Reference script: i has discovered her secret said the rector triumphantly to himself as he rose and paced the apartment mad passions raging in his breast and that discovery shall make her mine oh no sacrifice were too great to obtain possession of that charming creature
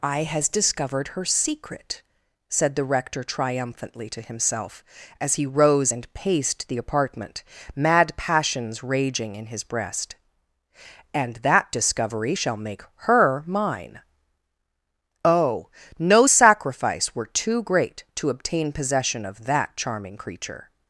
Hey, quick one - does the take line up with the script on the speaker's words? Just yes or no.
yes